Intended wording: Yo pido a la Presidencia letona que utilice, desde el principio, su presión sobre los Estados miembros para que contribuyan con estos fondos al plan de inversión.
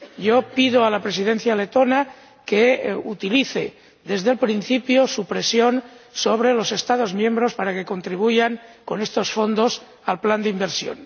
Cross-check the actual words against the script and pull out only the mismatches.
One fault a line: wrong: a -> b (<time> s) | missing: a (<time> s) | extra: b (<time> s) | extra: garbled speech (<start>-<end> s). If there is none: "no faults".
no faults